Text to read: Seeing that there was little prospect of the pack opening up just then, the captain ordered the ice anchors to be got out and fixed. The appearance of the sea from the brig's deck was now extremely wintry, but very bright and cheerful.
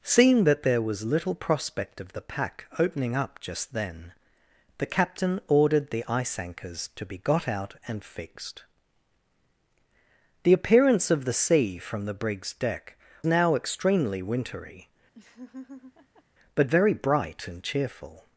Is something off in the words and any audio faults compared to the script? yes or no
yes